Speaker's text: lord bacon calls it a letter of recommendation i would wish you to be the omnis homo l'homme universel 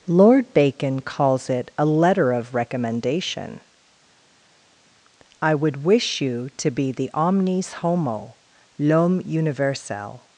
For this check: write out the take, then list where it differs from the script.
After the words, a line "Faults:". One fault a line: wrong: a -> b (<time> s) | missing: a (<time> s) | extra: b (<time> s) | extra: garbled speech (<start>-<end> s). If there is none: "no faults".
lord bacon calls it a letter of recommendation i would wish you to be the omnis homo l'homme universel
Faults:
no faults